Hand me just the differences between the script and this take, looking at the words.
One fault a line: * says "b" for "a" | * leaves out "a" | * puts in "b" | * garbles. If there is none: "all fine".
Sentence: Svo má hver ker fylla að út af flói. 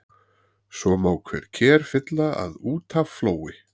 all fine